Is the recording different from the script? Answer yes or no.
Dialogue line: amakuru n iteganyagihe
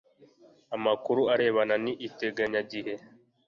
yes